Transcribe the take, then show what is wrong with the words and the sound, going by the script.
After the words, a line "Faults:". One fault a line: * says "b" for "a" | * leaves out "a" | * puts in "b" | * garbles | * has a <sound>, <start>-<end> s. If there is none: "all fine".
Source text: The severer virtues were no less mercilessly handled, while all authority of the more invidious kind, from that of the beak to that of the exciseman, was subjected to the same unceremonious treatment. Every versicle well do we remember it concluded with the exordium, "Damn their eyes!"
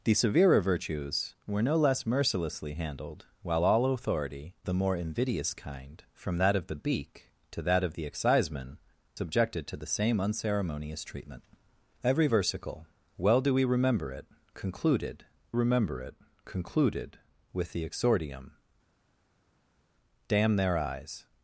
The severer virtues were no less mercilessly handled, while all authority the more invidious kind, from that of the beak to that of the exciseman, subjected to the same unceremonious treatment. Every versicle well do we remember it concluded remember it concluded with the exordium, "Damn their eyes!"
Faults:
* leaves out "of"
* leaves out "was"
* puts in "remember it concluded"